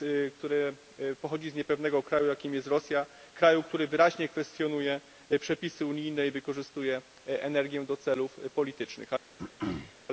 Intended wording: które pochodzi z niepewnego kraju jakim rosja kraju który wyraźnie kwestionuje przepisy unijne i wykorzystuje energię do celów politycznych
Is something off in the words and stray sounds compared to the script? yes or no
yes